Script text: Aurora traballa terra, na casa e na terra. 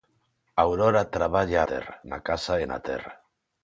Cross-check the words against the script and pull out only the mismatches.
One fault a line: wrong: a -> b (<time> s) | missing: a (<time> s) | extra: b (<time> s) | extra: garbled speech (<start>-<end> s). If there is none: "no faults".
no faults